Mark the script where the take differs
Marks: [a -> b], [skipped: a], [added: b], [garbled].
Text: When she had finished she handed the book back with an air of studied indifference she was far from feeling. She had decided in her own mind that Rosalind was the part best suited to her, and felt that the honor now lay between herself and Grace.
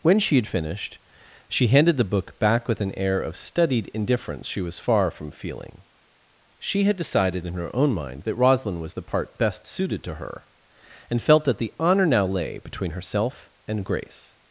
When she had finished she handed the book back with an air of studied indifference she was far from feeling. She had decided in her own mind that Rosalind was the part best suited to her, and felt that the honor now lay between herself and Grace.